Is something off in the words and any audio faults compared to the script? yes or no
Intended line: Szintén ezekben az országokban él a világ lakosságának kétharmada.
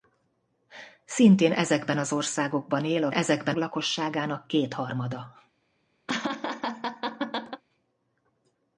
yes